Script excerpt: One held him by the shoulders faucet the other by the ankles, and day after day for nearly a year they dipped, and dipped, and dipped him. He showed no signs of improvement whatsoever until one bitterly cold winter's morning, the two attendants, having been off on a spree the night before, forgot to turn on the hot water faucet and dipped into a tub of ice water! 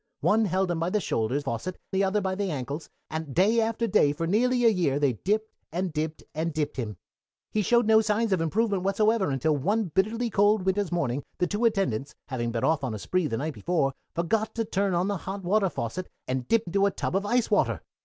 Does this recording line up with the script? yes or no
yes